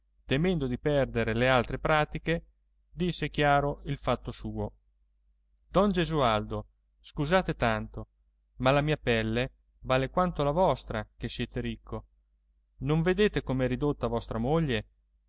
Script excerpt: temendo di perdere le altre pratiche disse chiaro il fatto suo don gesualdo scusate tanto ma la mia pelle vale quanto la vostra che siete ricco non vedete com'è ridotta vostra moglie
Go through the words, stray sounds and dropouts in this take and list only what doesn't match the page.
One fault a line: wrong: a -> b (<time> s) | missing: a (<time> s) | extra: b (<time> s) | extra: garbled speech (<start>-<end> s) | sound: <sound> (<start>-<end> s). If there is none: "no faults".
no faults